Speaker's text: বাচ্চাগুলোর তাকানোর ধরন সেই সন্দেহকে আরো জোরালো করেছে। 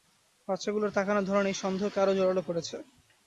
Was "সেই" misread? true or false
true